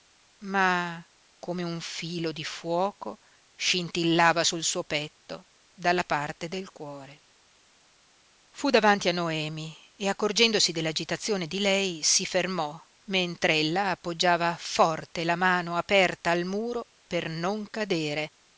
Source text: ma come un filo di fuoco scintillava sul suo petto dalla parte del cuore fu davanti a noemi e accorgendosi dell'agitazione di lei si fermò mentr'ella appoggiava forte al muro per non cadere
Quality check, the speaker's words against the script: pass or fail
fail